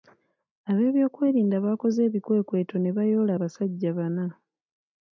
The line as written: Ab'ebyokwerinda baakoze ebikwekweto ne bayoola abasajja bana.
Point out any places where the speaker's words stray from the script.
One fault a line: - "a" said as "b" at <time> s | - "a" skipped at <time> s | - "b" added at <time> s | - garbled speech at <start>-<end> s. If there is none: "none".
none